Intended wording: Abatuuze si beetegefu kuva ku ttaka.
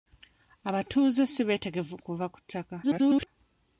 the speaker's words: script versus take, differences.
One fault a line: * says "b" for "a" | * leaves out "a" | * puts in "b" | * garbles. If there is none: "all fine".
* garbles